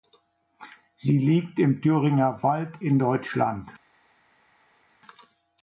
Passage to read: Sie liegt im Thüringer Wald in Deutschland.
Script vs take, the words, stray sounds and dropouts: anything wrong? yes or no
no